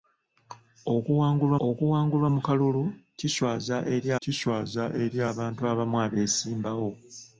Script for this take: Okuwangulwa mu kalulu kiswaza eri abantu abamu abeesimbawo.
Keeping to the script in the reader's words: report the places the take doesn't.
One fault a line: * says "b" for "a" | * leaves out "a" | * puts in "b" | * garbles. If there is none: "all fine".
* puts in "okuwangulwa"
* puts in "kiswaza eri"